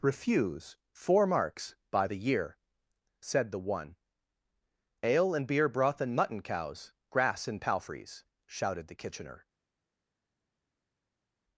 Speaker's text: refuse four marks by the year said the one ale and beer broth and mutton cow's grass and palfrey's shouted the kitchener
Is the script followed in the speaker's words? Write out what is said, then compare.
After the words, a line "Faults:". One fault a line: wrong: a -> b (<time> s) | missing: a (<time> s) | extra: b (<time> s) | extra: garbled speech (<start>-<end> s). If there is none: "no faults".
refuse four marks by the year said the one ale and beer broth and mutton cow's grass and palfrey's shouted the kitchener
Faults:
no faults